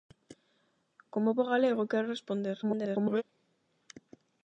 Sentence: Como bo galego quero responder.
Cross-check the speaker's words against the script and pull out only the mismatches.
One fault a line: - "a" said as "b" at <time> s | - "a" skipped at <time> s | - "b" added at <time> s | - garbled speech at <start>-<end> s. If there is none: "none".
- garbled speech at 2.6-3.2 s